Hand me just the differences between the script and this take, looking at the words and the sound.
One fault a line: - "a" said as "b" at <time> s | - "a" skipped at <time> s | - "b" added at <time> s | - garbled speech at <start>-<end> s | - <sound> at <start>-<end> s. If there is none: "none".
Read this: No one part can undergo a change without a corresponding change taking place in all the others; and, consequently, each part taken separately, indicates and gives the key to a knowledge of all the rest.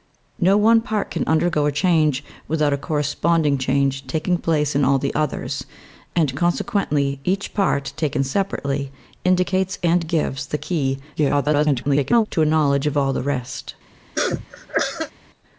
- garbled speech at 11.2-12.3 s
- cough at 14.1-15.1 s